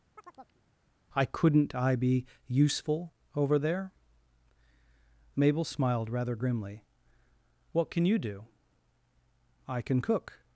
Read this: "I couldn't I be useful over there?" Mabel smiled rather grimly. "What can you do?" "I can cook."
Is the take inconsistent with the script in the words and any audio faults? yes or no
yes